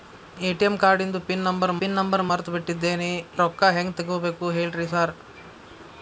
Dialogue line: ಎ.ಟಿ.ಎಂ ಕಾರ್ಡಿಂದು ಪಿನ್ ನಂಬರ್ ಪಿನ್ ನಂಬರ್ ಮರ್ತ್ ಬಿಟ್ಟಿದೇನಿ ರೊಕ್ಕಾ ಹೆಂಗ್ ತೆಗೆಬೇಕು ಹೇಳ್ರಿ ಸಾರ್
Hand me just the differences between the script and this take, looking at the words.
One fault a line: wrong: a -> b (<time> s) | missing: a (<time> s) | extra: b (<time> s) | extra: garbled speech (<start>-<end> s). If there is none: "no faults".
no faults